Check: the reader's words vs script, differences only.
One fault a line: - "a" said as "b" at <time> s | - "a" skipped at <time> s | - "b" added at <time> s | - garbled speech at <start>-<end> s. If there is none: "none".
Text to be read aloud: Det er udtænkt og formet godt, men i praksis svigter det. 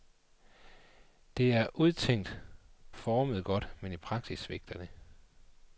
- "og" skipped at 2.4 s